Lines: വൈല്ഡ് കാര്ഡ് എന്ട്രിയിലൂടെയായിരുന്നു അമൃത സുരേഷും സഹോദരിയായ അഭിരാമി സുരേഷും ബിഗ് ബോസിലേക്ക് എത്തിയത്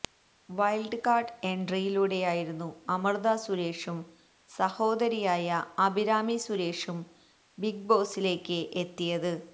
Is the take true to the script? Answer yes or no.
yes